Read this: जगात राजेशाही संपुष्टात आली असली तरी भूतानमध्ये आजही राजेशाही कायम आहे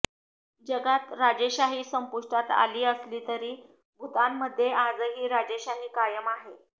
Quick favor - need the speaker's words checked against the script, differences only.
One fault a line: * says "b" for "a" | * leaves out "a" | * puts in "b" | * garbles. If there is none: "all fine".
all fine